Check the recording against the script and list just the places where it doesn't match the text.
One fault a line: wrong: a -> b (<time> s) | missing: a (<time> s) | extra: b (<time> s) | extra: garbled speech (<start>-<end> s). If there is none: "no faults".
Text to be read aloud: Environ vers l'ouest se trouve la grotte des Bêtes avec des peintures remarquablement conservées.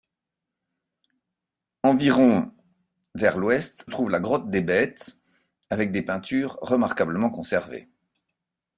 missing: se (3.9 s)